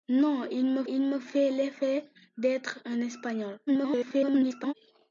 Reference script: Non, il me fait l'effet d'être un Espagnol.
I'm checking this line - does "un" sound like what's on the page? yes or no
yes